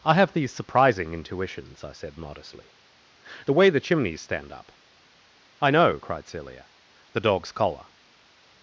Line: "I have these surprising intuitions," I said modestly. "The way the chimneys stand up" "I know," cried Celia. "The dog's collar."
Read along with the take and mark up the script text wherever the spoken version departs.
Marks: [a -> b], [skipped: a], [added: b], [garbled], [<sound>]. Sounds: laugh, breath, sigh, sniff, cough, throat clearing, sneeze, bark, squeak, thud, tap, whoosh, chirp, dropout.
"I have these surprising intuitions," I said modestly. "The way the chimneys stand up" "I know," cried Celia. "The dog's collar."